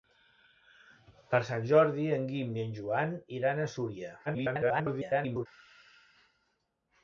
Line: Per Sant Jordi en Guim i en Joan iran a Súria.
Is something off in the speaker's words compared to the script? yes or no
yes